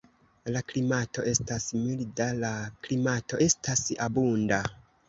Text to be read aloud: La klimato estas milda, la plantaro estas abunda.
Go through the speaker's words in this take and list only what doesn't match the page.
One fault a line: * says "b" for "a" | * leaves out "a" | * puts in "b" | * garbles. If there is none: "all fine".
* says "klimato" for "plantaro"